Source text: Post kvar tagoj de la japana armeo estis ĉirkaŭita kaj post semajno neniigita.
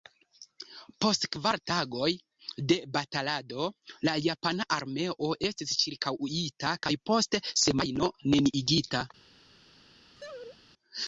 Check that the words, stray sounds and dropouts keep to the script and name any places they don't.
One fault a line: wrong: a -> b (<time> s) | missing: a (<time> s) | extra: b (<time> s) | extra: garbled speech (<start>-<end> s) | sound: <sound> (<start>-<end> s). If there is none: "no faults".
extra: batalado (3.0 s)
sound: laugh (10.2-10.6 s)